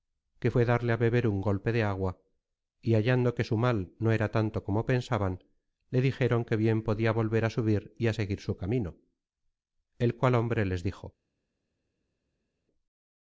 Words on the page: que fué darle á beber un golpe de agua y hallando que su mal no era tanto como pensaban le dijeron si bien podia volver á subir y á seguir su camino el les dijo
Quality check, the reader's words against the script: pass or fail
fail